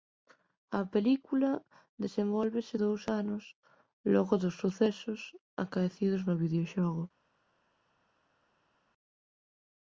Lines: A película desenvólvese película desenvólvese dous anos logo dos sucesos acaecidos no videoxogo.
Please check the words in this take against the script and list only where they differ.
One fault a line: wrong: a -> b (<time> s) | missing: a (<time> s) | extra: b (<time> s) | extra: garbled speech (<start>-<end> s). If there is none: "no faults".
missing: película desenvólvese (2.8 s)